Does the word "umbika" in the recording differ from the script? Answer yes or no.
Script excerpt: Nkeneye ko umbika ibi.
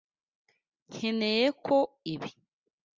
yes